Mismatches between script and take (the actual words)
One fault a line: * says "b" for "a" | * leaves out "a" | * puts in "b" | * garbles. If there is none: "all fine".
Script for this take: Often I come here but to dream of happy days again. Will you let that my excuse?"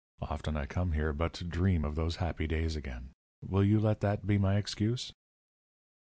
* puts in "those"
* puts in "be"